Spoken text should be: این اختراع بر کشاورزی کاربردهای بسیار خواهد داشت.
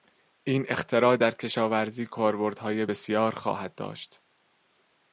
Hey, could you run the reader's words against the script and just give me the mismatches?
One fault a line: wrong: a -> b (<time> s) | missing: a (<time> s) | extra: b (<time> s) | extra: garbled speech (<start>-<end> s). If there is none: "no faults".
wrong: بر -> در (1.2 s)